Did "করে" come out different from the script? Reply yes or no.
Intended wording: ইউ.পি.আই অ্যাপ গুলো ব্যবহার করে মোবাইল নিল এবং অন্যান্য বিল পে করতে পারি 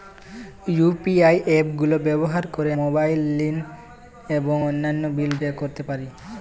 no